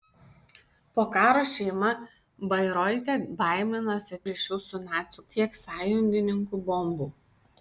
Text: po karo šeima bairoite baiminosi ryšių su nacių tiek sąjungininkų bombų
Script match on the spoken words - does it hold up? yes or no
yes